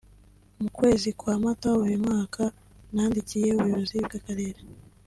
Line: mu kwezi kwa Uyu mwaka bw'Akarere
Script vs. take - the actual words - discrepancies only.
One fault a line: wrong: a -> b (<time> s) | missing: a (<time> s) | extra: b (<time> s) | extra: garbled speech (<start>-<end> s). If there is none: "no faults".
extra: Mata (1.4 s)
extra: nandikiye Ubuyobozi (2.9 s)